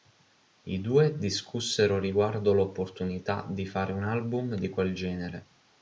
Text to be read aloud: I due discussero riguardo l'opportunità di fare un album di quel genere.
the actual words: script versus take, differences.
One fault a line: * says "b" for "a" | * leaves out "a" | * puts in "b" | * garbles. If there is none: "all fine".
all fine